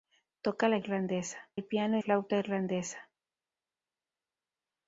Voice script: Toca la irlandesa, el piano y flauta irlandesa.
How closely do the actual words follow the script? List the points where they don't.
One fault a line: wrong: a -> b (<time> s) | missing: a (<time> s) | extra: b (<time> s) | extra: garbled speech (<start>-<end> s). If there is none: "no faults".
no faults